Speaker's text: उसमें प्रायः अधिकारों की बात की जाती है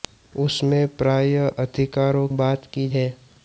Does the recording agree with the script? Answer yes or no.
no